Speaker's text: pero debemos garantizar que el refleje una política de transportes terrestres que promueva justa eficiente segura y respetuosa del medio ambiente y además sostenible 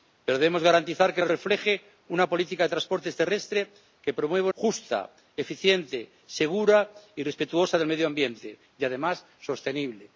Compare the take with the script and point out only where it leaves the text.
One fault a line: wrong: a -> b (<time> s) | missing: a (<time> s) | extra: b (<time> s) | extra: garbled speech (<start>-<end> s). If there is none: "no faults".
no faults